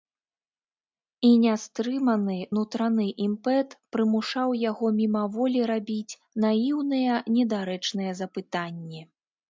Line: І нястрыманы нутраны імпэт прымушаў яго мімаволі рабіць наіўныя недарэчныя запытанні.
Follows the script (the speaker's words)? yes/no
yes